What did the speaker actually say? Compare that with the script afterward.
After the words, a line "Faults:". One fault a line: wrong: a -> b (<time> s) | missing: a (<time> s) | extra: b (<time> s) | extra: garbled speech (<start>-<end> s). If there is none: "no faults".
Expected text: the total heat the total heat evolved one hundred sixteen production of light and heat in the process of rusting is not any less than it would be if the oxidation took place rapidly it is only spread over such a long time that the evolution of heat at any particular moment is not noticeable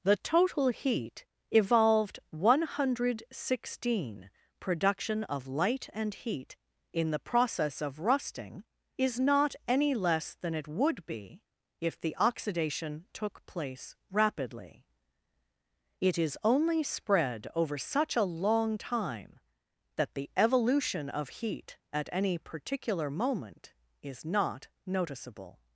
the total heat evolved one hundred sixteen production of light and heat in the process of rusting is not any less than it would be if the oxidation took place rapidly it is only spread over such a long time that the evolution of heat at any particular moment is not noticeable
Faults:
missing: the total heat (1.2 s)